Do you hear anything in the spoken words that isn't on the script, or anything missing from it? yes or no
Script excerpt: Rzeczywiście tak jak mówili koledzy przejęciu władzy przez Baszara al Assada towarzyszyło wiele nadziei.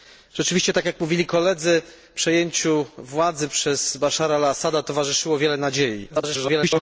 yes